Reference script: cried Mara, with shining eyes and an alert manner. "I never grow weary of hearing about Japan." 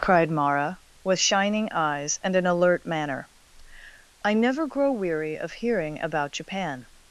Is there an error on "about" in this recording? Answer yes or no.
no